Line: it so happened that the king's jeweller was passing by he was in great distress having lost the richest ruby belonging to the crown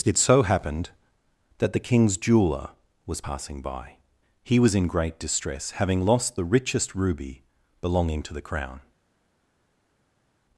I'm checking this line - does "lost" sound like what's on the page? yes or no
yes